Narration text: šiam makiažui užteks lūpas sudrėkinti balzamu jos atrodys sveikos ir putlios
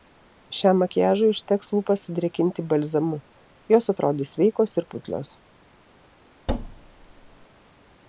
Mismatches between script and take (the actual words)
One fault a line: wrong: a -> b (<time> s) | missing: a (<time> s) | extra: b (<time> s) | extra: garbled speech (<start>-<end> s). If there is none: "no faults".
no faults